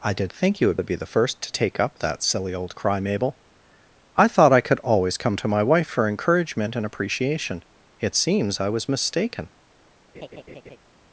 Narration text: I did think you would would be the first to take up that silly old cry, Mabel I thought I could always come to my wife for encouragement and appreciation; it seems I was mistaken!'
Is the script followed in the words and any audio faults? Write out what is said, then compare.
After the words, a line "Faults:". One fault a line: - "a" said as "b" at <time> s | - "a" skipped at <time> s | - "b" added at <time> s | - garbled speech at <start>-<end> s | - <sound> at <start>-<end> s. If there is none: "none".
I did think you would would be the first to take up that silly old cry, Mabel I thought I could always come to my wife for encouragement and appreciation; it seems I was mistaken!'
Faults:
- laugh at 10.1-10.8 s